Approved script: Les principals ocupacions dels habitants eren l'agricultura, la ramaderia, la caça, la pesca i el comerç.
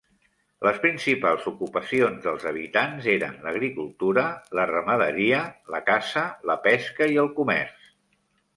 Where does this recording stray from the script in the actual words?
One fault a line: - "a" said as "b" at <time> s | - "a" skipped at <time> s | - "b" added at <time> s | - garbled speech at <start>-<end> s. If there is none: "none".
none